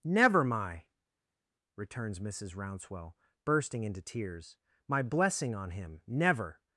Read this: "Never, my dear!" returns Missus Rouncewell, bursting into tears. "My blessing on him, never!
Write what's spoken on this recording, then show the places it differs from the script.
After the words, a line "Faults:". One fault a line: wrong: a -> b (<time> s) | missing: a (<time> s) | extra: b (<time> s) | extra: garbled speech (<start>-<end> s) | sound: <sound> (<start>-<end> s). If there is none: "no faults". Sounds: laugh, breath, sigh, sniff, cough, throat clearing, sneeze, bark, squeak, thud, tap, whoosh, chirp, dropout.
"Never, my!" returns Missus Rouncewell, bursting into tears. "My blessing on him, never!
Faults:
missing: dear (0.9 s)